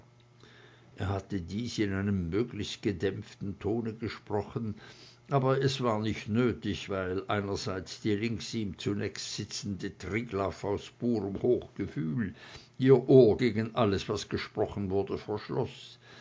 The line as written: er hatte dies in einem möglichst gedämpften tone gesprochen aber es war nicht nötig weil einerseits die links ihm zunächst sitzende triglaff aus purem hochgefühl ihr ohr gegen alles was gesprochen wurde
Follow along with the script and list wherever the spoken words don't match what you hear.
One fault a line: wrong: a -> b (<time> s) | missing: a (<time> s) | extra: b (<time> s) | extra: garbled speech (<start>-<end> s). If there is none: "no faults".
no faults